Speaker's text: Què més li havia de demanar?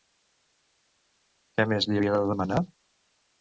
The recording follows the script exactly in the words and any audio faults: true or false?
true